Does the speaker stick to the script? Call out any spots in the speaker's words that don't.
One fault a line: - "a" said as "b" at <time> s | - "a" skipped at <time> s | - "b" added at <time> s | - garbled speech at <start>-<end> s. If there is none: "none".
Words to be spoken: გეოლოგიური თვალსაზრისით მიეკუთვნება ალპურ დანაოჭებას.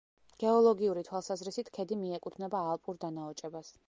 - "ქედი" added at 1.8 s